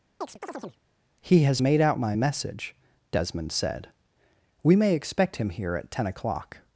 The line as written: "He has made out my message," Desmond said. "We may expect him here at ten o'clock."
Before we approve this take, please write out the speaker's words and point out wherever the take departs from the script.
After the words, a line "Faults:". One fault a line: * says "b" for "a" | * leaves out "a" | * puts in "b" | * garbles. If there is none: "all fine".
"He has made out my message," Desmond said. "We may expect him here at ten o'clock."
Faults:
all fine